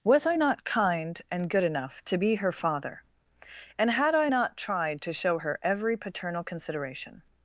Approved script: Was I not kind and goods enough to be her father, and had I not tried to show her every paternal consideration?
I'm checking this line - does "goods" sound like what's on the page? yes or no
no